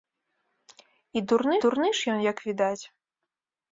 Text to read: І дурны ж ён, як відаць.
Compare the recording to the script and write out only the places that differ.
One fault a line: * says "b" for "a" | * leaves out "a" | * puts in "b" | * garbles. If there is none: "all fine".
* puts in "дурны"